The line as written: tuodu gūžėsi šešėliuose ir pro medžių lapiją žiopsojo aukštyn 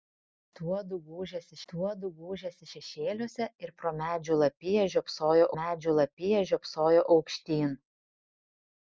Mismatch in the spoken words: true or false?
true